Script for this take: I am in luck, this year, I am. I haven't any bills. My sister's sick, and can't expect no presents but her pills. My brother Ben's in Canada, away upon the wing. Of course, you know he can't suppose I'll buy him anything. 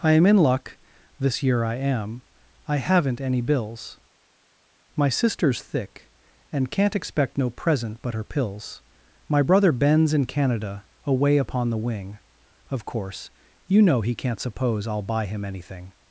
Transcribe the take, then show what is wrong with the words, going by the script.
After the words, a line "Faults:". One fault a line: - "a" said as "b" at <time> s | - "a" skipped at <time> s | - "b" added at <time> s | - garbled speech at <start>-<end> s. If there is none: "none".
I am in luck, this year, I am. I haven't any bills. My sister's thick, and can't expect no present but her pills. My brother Ben's in Canada, away upon the wing. Of course, you know he can't suppose I'll buy him anything.
Faults:
- "sick" said as "thick" at 5.6 s
- "presents" said as "present" at 7.5 s